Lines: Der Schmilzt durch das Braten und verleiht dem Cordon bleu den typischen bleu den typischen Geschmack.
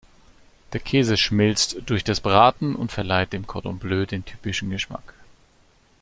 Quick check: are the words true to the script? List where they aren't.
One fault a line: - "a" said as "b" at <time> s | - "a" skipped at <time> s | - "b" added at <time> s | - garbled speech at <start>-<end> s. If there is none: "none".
- "Käse" added at 0.8 s
- "bleu den typischen" skipped at 4.7 s